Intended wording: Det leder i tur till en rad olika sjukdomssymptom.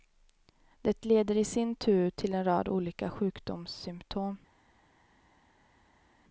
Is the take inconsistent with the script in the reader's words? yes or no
yes